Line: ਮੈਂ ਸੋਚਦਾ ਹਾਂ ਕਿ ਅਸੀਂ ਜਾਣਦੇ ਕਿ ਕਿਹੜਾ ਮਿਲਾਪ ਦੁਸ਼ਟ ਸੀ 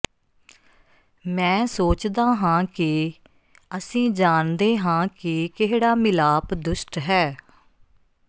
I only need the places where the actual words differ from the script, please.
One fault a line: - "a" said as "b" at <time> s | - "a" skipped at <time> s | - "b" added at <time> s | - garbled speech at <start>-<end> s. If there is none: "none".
- "ਹਾਂ" added at 4.8 s
- "ਸੀ" said as "ਹੈ" at 7.0 s